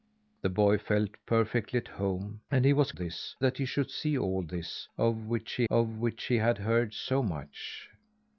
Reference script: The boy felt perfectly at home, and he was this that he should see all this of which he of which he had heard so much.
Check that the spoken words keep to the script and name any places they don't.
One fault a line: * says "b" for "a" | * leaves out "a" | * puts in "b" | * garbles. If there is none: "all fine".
all fine